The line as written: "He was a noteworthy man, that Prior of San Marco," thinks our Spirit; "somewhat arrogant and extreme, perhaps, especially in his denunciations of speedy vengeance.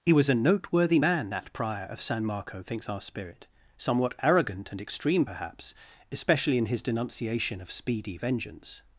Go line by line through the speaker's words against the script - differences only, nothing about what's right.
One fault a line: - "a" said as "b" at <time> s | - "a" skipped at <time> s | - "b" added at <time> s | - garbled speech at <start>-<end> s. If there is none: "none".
- "denunciations" said as "denunciation" at 6.8 s